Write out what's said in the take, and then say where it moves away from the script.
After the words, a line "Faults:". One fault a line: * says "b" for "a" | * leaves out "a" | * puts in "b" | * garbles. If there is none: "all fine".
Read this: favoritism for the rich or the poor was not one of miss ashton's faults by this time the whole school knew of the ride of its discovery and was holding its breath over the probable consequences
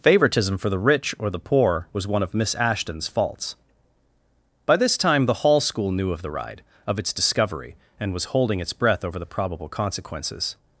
favoritism for the rich or the poor was one of miss ashton's faults by this time the hall school knew of the ride of its discovery and was holding its breath over the probable consequences
Faults:
* leaves out "not"
* says "hall" for "whole"